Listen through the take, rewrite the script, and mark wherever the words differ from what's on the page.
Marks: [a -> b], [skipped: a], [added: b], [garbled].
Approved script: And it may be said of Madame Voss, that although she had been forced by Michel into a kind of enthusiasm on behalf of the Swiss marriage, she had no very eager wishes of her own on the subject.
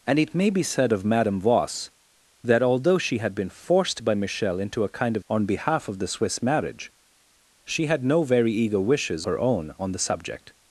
And it may be said of Madame Voss, that although she had been forced by Michel into a kind of [skipped: enthusiasm] on behalf of the Swiss marriage, she had no very eager wishes [skipped: of] her own on the subject.